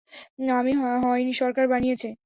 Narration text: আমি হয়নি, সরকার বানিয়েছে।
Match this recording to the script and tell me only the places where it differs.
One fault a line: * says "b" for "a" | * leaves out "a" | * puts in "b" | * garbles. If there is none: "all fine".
all fine